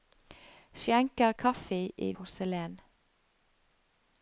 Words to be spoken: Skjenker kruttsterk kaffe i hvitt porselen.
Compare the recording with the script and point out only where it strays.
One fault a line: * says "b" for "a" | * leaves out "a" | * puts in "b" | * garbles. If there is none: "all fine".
* leaves out "kruttsterk"
* leaves out "hvitt"